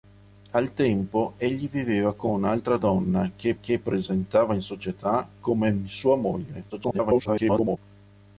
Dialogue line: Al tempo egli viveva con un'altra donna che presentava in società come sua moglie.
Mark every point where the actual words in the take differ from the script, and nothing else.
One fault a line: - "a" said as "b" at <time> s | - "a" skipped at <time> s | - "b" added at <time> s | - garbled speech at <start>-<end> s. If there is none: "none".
- "che" added at 3.6 s
- garbled speech at 6.7-7.8 s